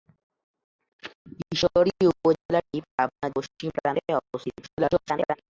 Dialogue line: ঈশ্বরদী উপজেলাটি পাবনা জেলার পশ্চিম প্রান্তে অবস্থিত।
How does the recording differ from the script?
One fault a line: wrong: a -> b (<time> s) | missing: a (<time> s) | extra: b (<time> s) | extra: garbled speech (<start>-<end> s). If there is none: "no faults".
missing: জেলার (3.3 s)
extra: garbled speech (4.6-5.4 s)